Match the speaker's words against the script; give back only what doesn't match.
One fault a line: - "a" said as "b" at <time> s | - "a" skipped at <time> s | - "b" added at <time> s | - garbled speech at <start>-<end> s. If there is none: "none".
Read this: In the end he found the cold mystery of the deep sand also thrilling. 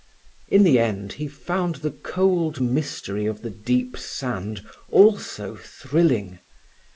none